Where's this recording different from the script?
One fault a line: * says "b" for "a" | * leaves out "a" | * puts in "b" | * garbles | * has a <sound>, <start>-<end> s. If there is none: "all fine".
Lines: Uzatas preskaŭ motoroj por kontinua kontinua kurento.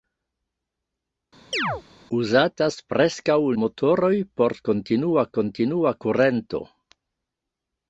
* has a chirp, 1.5-1.8 s